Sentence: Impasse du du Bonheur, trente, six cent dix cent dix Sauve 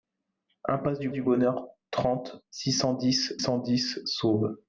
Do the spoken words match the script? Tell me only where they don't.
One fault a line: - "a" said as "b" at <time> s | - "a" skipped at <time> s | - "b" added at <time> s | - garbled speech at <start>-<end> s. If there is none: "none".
none